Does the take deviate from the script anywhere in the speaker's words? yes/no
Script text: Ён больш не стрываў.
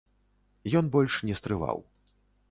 no